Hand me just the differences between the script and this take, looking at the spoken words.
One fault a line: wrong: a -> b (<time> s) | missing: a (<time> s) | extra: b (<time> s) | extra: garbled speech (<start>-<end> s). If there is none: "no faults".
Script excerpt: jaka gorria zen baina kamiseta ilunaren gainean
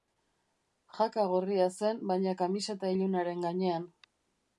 no faults